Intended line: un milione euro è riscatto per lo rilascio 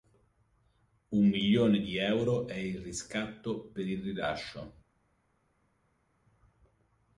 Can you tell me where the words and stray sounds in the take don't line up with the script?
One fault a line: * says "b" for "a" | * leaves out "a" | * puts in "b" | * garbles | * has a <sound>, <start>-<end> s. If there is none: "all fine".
* puts in "di"
* puts in "il"
* says "il" for "lo"